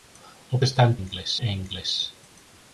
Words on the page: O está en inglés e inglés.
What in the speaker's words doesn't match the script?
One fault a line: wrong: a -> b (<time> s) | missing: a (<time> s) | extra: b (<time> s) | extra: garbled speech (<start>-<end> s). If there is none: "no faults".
no faults